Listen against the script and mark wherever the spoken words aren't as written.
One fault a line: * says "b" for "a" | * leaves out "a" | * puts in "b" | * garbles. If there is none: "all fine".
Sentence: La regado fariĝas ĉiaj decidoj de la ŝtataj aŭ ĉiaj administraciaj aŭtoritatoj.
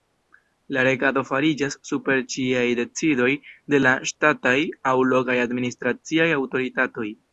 * puts in "super"
* says "lokaj" for "ĉiaj"